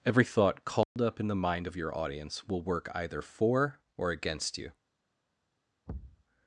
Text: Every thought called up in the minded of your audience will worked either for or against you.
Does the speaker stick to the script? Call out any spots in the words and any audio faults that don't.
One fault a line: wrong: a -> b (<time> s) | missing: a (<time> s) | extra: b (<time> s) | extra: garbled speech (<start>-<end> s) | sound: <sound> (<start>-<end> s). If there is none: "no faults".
sound: dropout (0.8-1.0 s)
wrong: minded -> mind (1.4 s)
wrong: worked -> work (2.6 s)
sound: thud (5.9-6.2 s)